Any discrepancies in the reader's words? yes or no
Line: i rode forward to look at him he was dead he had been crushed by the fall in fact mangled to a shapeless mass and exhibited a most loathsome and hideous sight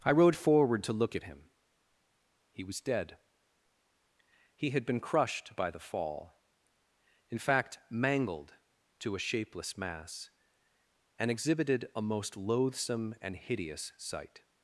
no